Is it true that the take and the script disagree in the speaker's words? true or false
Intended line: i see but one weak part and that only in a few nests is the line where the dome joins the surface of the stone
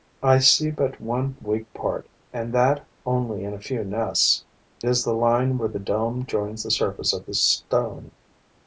false